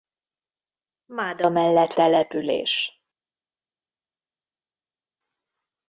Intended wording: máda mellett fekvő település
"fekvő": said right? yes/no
no